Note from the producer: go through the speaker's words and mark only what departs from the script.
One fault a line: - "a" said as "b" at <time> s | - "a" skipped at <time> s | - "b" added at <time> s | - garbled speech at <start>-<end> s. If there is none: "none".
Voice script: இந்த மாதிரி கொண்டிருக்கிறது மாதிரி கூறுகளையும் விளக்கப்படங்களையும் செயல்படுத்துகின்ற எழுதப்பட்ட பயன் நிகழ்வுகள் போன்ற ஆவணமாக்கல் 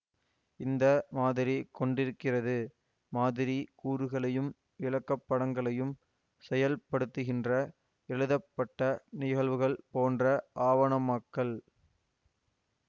- "பயன்" skipped at 8.8 s